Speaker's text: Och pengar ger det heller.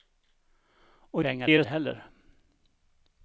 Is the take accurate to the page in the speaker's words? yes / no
yes